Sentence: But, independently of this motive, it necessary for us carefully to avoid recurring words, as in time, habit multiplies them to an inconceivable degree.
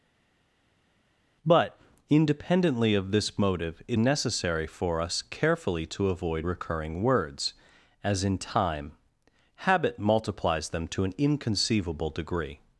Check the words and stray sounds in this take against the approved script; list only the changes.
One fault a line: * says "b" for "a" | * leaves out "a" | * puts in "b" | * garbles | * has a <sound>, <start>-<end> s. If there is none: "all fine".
all fine